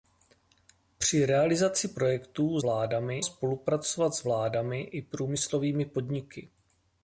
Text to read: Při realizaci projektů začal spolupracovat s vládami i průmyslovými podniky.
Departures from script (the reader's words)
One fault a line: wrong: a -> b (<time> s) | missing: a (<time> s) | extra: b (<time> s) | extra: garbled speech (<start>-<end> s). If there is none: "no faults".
wrong: začal -> vládami (2.6 s)